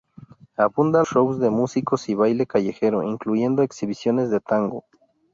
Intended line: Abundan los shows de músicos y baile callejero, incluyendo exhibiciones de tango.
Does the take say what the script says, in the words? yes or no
no